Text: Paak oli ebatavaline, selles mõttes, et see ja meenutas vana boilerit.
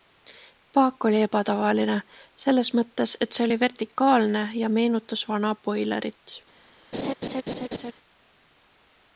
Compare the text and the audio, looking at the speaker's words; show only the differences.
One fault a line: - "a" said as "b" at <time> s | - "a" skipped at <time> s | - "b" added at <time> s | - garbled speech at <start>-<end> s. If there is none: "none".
- "oli vertikaalne" added at 3.5 s